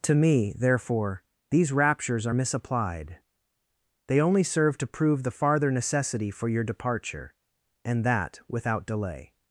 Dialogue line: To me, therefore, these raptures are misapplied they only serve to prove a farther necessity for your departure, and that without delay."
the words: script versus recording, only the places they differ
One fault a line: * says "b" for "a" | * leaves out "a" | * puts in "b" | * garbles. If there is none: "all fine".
* says "the" for "a"